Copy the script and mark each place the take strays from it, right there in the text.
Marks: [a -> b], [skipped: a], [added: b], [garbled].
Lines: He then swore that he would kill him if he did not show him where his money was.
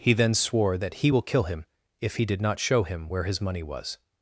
He then swore that he [would -> will] kill him if he did not show him where his money was.